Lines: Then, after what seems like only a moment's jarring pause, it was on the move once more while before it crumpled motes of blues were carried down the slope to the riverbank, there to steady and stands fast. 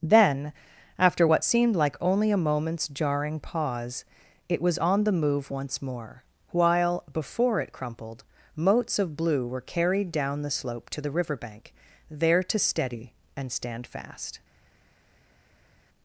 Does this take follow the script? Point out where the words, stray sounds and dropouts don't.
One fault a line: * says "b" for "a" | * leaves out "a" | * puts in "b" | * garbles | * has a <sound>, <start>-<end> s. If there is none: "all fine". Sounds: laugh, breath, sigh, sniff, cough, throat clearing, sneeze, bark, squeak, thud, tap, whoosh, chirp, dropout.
* says "seemed" for "seems"
* says "blue" for "blues"
* says "stand" for "stands"